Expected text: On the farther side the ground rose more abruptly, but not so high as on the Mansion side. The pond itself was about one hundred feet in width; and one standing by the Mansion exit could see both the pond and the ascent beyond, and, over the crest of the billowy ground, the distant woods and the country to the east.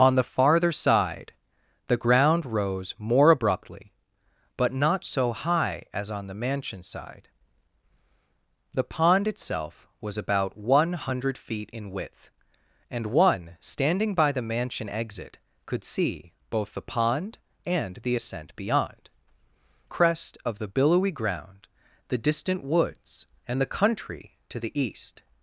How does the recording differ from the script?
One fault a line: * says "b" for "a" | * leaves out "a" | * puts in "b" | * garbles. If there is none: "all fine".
* leaves out "and over the"